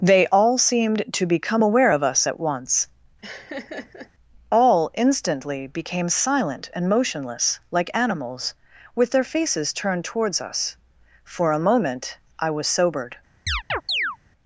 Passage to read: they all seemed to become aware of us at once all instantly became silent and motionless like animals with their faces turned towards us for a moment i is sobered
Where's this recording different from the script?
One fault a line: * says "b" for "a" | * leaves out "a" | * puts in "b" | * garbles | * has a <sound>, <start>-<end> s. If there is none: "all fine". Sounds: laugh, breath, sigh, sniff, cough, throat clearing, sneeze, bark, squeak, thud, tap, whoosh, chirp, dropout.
* has a laugh, 3.2-4.1 s
* says "was" for "is"
* has a chirp, 13.5-14.2 s